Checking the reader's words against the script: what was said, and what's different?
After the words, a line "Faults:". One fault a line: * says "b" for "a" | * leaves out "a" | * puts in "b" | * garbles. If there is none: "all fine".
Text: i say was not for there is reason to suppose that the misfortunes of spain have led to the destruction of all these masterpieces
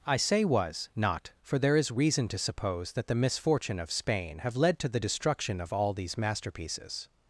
i say was not for there is reason to suppose that the misfortune of spain have led to the destruction of all these masterpieces
Faults:
* says "misfortune" for "misfortunes"